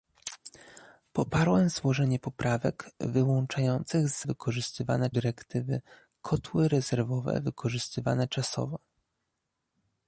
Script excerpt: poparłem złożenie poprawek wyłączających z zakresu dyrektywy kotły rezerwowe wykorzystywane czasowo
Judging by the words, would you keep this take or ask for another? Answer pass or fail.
fail